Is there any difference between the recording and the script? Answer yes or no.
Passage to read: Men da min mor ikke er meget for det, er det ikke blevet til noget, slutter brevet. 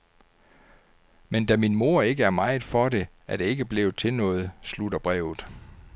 no